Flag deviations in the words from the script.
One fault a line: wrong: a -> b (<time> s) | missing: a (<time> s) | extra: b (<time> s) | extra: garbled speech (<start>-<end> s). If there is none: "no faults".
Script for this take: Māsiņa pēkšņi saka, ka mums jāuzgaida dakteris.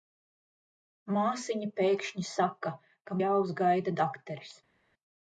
missing: mums (3.2 s)